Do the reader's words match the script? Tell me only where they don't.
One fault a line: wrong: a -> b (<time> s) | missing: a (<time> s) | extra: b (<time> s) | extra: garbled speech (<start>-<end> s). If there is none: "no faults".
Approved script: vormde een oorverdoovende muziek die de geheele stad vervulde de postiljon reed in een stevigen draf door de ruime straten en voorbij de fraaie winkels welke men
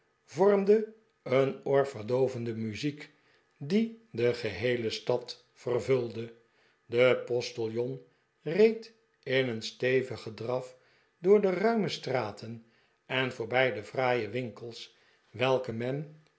no faults